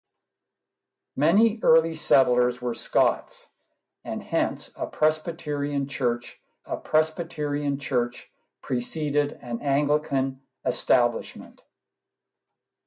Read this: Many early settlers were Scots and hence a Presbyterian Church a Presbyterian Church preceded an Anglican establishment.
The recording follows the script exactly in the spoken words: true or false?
true